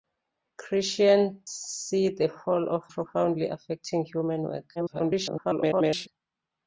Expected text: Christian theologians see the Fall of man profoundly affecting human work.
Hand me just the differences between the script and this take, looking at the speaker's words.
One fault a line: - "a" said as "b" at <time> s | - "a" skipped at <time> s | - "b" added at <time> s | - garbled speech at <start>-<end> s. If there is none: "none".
- "theologians" skipped at 1.4 s
- "man" skipped at 2.8 s
- garbled speech at 4.8-6.1 s